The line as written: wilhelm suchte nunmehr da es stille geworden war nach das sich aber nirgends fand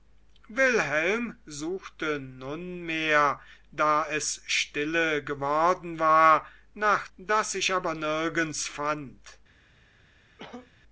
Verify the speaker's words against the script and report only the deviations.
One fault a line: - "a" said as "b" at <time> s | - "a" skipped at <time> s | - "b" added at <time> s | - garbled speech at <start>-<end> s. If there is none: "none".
none